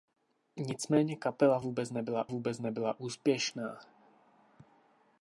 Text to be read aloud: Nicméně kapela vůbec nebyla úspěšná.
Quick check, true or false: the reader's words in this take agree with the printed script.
false